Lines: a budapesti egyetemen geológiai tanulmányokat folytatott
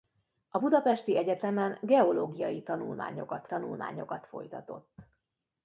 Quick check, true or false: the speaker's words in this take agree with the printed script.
false